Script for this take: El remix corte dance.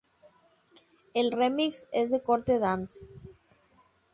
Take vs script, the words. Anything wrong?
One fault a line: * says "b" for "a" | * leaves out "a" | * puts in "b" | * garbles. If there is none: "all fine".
* puts in "es de"